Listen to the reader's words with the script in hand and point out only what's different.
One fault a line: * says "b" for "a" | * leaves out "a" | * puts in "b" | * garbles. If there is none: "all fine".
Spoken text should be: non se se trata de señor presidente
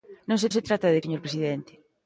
all fine